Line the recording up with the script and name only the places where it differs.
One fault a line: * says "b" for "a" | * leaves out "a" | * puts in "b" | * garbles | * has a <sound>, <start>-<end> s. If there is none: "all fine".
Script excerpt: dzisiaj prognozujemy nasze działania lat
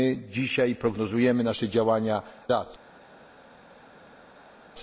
all fine